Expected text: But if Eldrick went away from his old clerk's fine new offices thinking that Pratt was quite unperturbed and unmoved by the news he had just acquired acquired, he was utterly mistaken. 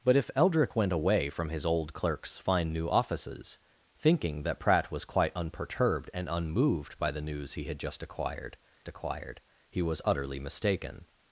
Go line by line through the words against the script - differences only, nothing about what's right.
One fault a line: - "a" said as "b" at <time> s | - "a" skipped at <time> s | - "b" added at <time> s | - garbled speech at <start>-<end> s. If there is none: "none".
none